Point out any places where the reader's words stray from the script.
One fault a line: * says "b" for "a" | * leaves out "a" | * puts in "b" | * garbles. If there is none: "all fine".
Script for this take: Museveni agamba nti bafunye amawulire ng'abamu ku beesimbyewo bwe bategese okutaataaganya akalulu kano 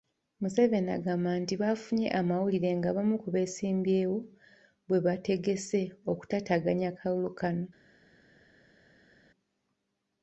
all fine